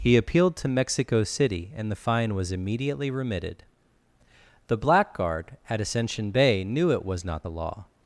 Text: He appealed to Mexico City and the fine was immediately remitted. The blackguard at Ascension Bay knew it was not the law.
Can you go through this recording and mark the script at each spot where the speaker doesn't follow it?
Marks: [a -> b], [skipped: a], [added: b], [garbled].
He appealed to Mexico City and the fine was immediately remitted. The blackguard at Ascension Bay knew it was not the law.